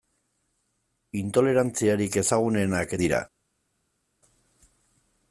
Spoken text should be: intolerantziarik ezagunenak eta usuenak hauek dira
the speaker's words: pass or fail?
fail